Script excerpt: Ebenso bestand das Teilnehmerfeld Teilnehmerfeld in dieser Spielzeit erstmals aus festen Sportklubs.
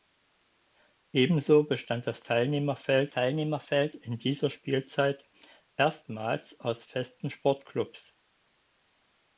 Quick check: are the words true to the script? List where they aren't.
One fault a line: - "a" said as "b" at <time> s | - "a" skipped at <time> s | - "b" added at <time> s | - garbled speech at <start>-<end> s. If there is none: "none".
none